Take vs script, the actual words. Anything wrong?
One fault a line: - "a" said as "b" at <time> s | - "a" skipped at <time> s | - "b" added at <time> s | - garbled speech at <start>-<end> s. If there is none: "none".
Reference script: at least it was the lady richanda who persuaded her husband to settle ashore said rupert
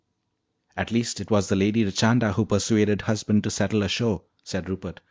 - "her" skipped at 3.0 s